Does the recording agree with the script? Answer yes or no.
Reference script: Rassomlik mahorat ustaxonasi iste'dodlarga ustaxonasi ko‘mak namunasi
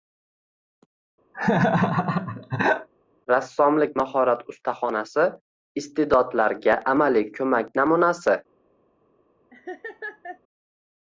no